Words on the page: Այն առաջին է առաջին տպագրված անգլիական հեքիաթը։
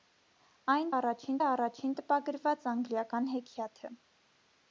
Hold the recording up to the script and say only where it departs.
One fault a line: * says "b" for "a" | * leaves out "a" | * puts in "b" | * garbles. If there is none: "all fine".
all fine